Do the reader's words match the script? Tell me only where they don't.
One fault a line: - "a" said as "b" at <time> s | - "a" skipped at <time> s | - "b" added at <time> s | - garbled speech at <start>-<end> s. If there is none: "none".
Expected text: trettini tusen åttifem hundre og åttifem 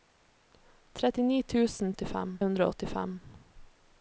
none